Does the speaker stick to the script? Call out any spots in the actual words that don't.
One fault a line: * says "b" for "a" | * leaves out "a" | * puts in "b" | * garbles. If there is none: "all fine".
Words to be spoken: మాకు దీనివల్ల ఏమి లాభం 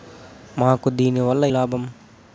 * leaves out "ఏమి"